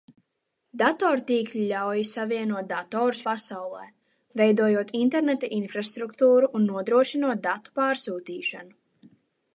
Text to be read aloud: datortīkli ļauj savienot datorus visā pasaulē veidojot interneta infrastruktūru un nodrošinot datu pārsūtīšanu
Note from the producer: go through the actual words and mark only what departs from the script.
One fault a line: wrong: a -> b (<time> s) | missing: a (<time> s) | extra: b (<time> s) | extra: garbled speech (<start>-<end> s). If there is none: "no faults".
missing: visā (3.2 s)